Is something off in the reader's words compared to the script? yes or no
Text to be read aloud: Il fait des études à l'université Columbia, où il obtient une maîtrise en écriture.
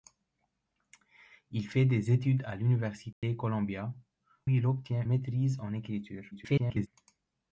yes